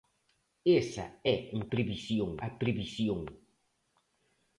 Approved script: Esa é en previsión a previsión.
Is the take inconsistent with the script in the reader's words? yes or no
no